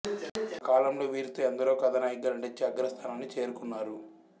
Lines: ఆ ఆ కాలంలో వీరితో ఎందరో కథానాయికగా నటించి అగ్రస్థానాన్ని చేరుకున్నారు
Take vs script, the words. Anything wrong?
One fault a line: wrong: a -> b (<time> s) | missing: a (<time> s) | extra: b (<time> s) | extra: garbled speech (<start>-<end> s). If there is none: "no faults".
no faults